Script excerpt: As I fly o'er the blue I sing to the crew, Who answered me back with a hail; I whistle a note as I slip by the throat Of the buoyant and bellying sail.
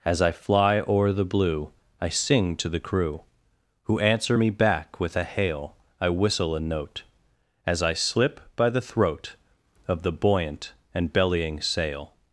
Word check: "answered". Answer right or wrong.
wrong